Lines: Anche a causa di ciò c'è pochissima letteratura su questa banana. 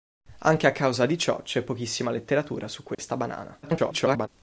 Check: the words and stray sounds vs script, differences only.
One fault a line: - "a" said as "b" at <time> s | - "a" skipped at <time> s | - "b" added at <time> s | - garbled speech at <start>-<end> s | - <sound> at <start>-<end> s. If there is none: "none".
- dropout at 2.9-3.0 s
- garbled speech at 3.6-4.3 s